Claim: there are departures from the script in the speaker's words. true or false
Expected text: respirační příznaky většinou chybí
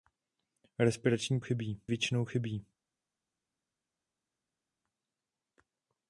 true